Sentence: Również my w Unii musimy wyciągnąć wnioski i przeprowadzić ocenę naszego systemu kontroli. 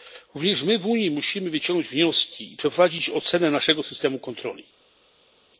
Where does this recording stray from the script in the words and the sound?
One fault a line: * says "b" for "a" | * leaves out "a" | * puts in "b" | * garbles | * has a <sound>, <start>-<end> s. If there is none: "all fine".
all fine